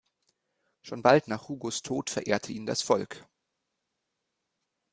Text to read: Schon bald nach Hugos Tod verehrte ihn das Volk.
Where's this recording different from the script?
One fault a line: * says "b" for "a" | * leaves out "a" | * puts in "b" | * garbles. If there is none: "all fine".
all fine